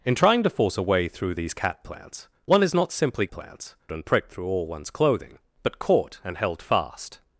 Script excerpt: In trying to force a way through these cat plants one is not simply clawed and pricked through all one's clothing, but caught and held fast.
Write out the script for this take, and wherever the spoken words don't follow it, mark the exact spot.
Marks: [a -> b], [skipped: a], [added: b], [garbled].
In trying to force a way through these cat plants one is not simply [clawed -> plants] and pricked through all one's clothing, but caught and held fast.